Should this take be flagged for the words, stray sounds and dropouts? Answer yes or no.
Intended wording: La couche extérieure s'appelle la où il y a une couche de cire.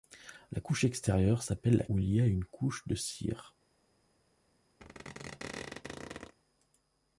yes